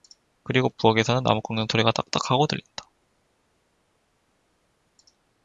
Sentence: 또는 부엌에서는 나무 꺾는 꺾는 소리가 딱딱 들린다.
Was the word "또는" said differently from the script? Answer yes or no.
yes